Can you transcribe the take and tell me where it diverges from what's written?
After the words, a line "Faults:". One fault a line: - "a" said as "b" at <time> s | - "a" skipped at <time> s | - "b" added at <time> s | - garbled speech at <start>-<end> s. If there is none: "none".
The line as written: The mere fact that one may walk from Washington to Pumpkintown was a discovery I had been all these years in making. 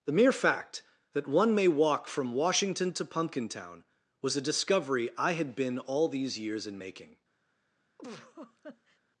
The mere fact that one may walk from Washington to Pumpkintown was a discovery I had been all these years in making.
Faults:
none